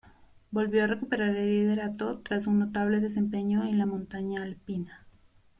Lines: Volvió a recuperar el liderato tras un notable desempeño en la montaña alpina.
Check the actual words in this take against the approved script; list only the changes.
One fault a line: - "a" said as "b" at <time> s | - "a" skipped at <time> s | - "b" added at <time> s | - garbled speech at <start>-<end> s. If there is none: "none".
none